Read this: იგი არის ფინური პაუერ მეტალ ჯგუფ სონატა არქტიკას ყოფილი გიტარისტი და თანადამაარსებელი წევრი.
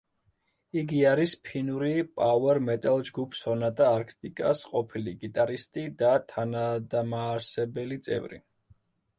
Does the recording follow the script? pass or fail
pass